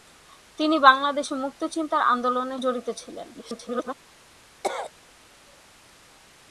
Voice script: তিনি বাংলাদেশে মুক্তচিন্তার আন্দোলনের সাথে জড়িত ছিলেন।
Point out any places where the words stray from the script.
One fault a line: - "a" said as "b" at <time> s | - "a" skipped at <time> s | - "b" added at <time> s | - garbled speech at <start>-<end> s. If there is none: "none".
- "সাথে" skipped at 2.6 s
- garbled speech at 3.3-4.0 s